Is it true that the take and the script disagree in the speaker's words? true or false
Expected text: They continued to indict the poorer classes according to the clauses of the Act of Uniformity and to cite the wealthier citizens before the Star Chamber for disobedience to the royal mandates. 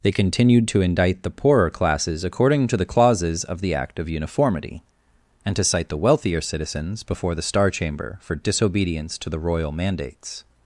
false